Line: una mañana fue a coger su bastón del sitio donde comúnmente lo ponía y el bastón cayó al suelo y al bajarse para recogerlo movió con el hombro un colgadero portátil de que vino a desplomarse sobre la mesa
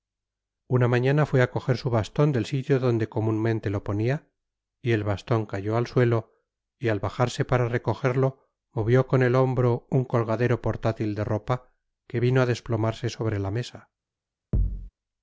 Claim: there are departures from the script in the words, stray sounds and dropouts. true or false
true